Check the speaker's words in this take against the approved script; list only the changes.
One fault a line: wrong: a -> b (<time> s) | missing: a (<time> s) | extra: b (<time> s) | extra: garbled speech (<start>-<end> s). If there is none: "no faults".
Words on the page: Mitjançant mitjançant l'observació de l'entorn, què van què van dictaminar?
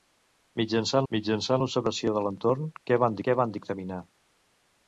no faults